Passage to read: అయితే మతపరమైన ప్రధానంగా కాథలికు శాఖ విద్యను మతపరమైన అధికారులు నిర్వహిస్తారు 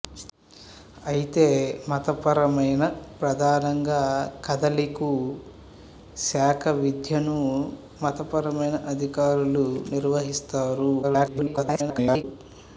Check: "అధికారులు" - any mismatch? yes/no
no